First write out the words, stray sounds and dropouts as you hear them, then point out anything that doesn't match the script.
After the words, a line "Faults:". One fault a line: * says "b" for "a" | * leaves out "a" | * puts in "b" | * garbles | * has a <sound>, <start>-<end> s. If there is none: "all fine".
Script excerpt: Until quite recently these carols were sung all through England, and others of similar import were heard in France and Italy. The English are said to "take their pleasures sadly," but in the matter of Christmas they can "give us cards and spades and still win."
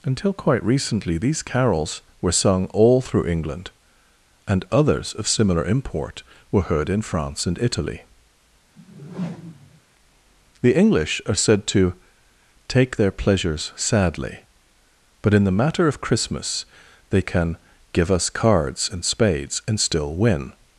Until quite recently these carols were sung all through England, and others of similar import were heard in France and Italy. The English are said to "take their pleasures sadly," but in the matter of Christmas they can "give us cards and spades and still win."
Faults:
* has a whoosh, 8.8-9.8 s